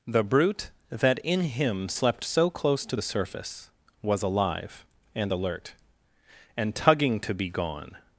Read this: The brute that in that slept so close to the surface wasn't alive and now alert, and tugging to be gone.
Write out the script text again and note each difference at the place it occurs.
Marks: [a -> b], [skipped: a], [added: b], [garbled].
The brute that in [that -> him] slept so close to the surface [wasn't -> was] alive and [skipped: now] alert, and tugging to be gone.